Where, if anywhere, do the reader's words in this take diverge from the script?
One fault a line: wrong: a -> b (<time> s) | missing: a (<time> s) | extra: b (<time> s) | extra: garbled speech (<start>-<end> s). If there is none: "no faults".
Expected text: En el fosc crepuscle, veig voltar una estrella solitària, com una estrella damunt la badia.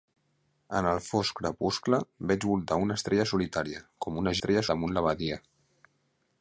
no faults